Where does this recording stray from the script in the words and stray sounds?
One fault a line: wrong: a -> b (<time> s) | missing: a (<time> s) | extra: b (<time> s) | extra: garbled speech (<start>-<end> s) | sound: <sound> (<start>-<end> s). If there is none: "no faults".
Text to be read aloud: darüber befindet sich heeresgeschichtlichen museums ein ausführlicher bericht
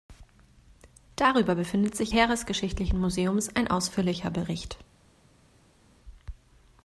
no faults